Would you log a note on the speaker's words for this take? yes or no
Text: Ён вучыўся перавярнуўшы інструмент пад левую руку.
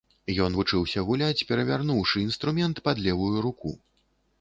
yes